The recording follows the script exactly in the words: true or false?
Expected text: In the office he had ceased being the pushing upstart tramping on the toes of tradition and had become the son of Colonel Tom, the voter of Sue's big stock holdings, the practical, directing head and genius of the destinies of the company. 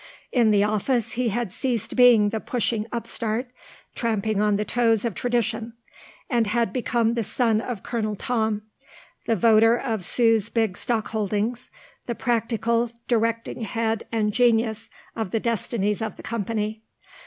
true